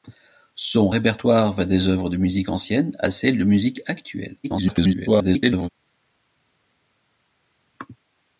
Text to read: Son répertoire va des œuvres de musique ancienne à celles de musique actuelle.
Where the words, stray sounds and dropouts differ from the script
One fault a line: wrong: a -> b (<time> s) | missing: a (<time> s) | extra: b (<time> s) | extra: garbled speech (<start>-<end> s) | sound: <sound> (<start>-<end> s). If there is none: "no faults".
extra: garbled speech (4.4-5.7 s)